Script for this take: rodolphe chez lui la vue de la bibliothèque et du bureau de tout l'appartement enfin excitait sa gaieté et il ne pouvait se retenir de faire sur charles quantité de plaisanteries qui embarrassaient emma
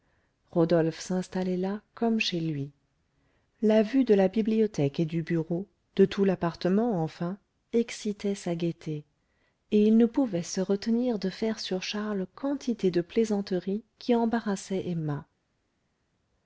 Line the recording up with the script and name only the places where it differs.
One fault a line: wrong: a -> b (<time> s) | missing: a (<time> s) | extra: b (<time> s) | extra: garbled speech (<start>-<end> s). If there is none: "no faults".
extra: s'installait là comme (1.0 s)